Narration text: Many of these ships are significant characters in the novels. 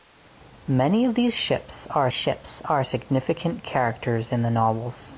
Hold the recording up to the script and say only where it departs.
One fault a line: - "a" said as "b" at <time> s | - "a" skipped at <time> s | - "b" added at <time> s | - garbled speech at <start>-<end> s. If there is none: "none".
- "ships are" added at 2.1 s